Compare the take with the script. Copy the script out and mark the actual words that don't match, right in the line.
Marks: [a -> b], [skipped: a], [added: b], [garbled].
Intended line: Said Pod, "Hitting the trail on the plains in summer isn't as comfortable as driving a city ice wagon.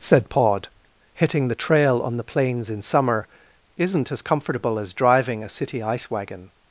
Said Pod, "Hitting the trail on the plains in summer isn't as comfortable as driving a city ice wagon.